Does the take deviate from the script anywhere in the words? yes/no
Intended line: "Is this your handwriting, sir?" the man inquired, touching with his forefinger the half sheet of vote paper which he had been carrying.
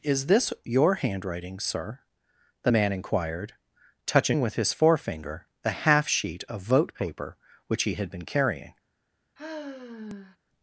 no